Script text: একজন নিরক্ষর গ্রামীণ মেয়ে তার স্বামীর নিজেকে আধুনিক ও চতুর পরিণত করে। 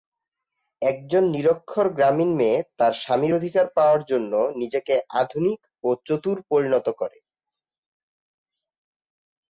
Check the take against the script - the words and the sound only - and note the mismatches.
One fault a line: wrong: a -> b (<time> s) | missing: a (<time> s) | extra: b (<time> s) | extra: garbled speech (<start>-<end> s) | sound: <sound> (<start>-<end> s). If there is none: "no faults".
extra: অধিকার পাওয়ার জন্য (3.3 s)